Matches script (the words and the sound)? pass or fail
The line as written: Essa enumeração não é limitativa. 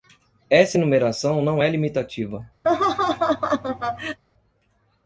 fail